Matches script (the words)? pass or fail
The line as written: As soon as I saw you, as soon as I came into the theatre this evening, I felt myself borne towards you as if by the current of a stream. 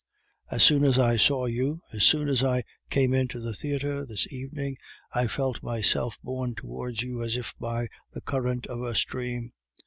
pass